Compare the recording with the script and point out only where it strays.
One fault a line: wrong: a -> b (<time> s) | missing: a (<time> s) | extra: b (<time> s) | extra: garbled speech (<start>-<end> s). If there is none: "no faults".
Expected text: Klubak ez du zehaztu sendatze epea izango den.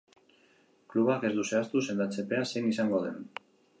extra: zein (2.5 s)